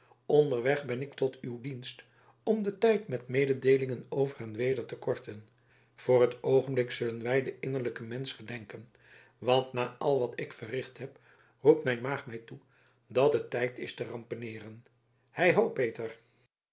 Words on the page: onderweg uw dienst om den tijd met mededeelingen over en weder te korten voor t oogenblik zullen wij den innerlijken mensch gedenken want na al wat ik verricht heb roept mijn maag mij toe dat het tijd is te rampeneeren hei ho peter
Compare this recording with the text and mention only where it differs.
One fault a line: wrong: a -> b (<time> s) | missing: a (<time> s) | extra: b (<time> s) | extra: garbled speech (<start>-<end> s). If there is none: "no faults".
extra: ben ik tot (0.8 s)